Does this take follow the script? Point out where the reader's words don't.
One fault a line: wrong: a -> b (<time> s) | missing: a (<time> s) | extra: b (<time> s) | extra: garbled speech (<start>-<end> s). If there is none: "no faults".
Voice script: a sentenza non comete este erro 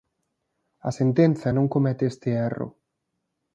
no faults